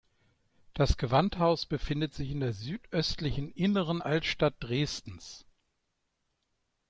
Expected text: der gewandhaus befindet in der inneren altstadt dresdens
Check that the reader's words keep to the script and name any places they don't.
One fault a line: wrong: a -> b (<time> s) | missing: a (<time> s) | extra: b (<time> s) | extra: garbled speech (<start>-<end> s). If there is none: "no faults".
wrong: der -> das (0.7 s)
extra: sich (2.1 s)
extra: südöstlichen (2.5 s)